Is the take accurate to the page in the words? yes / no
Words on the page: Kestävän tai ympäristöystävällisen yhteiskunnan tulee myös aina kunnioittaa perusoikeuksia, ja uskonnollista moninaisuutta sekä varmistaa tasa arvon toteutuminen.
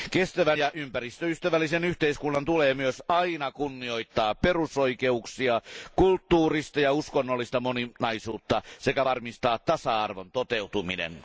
no